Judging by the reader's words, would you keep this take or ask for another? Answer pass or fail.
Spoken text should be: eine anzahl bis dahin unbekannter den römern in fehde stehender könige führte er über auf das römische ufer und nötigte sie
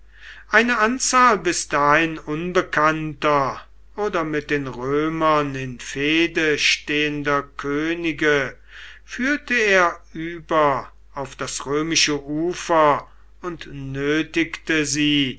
fail